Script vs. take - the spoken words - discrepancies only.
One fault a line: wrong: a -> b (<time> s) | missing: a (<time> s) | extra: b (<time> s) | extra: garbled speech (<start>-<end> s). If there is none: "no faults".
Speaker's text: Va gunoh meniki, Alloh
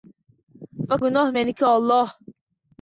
no faults